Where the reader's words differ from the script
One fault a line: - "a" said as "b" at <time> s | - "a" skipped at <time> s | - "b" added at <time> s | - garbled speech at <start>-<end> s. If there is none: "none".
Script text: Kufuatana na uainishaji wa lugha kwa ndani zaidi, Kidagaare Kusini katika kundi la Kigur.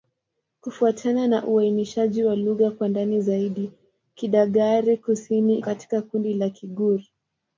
none